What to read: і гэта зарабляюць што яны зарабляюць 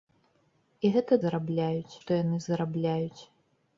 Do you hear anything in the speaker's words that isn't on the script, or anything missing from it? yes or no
no